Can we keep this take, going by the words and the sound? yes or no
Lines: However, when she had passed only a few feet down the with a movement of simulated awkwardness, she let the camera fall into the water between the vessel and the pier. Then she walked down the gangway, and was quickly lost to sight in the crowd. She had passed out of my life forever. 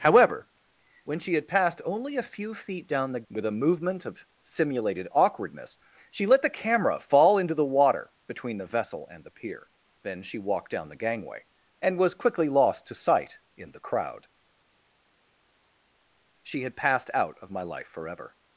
yes